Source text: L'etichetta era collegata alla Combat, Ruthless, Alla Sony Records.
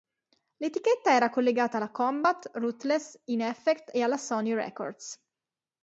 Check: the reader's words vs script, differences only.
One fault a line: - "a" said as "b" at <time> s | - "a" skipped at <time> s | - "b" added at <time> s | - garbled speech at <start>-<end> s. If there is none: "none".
- "In Effect e" added at 3.3 s